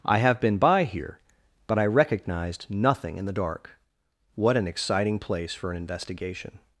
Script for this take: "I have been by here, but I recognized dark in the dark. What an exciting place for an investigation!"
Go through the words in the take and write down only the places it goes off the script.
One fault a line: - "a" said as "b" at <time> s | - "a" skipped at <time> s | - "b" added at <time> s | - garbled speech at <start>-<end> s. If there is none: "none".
- "dark" said as "nothing" at 2.7 s